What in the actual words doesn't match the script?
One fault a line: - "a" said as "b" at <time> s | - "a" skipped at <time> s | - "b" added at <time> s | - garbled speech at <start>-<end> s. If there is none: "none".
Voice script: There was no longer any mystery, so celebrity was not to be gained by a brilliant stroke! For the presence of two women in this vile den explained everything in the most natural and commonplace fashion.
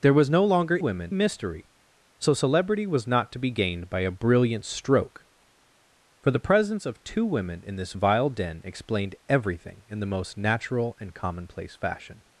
- "any" said as "women" at 0.8 s